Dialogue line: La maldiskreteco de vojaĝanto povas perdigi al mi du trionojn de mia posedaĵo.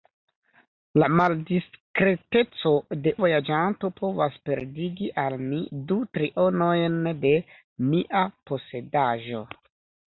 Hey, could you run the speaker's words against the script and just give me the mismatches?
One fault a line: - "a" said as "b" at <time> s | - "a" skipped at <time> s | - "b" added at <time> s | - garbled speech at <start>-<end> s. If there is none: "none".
none